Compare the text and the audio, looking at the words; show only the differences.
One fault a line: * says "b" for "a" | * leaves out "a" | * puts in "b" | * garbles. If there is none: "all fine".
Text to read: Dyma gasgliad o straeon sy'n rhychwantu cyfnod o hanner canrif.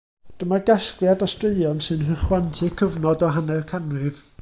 all fine